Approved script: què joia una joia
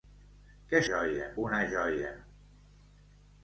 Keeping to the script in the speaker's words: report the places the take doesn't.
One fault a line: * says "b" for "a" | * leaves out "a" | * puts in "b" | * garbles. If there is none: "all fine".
all fine